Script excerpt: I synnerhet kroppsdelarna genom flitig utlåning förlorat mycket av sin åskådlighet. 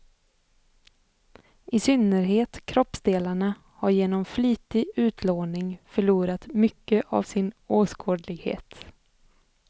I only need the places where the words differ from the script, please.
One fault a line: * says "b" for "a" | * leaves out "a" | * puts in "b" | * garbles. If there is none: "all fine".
* puts in "har"